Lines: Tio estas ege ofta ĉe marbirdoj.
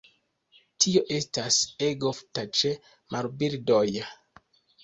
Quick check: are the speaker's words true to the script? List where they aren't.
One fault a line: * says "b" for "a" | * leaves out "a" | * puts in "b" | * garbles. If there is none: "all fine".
all fine